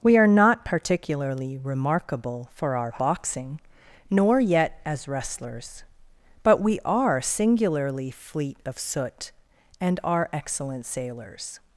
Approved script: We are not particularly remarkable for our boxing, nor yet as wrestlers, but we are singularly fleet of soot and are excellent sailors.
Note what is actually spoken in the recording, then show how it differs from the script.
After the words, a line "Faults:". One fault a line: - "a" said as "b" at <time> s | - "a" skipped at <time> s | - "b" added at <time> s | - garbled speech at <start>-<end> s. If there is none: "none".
We are not particularly remarkable for our boxing, nor yet as wrestlers, but we are singularly fleet of soot and are excellent sailors.
Faults:
none